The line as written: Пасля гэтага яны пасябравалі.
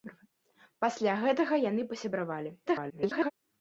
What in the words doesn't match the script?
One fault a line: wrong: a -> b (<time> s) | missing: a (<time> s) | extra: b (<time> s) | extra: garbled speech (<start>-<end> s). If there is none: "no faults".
extra: garbled speech (2.7-3.3 s)